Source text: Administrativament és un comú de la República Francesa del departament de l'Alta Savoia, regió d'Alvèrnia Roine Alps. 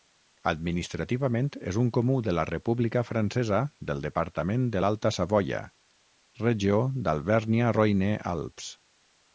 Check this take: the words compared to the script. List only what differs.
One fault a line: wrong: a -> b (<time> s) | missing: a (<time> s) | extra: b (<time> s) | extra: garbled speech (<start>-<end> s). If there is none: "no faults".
no faults